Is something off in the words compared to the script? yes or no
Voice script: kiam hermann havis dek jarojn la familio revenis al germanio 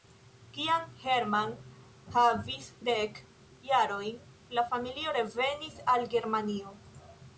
no